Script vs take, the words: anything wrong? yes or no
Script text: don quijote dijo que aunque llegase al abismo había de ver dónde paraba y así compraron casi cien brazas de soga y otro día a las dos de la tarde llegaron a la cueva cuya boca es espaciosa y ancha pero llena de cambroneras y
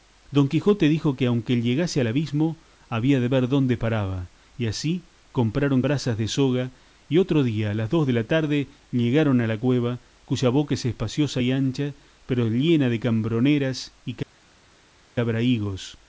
yes